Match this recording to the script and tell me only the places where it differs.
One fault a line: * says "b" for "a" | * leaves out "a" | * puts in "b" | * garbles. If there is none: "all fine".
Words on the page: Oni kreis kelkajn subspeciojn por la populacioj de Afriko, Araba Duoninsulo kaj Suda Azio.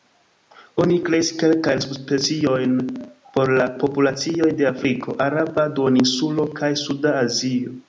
all fine